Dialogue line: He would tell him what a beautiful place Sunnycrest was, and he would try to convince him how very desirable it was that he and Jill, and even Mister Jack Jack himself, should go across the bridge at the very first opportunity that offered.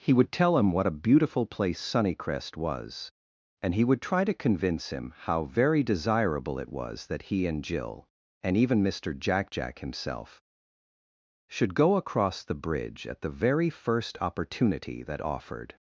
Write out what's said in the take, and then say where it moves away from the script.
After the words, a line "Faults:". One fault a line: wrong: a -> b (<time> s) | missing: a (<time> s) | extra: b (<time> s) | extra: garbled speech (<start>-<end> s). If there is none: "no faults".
He would tell him what a beautiful place Sunnycrest was, and he would try to convince him how very desirable it was that he and Jill, and even Mister Jack Jack himself, should go across the bridge at the very first opportunity that offered.
Faults:
no faults